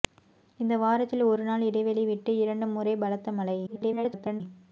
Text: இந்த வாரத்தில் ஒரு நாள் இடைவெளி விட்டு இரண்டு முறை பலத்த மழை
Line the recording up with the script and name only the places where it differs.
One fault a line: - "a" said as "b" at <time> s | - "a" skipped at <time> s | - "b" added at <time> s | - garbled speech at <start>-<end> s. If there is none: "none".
- garbled speech at 3.7-4.4 s